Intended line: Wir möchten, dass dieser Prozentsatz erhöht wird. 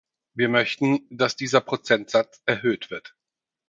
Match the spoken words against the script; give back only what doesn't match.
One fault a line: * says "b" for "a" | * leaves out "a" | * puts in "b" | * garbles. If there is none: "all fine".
all fine